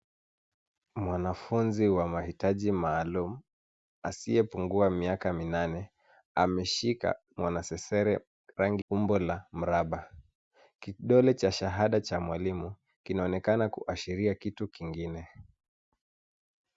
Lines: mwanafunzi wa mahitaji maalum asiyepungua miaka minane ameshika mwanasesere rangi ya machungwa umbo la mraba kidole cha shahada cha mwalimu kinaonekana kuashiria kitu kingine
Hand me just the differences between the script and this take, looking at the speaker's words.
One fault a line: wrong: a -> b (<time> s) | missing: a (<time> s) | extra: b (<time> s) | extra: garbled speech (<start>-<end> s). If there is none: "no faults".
missing: ya machungwa (8.8 s)